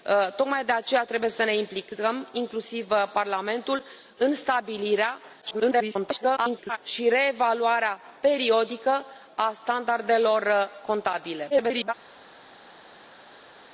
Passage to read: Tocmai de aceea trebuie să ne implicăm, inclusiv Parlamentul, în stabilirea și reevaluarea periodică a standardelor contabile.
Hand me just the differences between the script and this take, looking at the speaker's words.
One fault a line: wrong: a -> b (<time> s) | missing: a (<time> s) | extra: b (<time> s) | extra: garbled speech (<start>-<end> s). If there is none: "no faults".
extra: garbled speech (5.4-6.8 s)
extra: garbled speech (11.5-11.9 s)